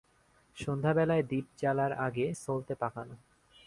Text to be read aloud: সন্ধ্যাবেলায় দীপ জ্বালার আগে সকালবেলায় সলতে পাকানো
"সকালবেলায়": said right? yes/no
no